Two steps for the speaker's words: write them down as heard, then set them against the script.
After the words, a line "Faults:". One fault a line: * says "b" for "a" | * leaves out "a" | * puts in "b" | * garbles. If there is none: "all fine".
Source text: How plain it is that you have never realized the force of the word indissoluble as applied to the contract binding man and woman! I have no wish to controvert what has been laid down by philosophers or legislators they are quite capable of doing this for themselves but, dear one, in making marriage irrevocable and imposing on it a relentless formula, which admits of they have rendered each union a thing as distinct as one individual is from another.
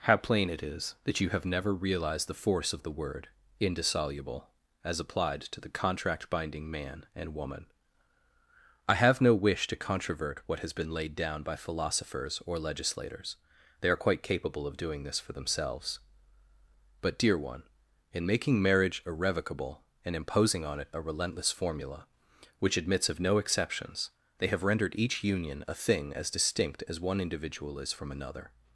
How plain it is that you have never realized the force of the word indissoluble as applied to the contract binding man and woman! I have no wish to controvert what has been laid down by philosophers or legislators they are quite capable of doing this for themselves but, dear one, in making marriage irrevocable and imposing on it a relentless formula, which admits of no exceptions, they have rendered each union a thing as distinct as one individual is from another.
Faults:
* puts in "no exceptions"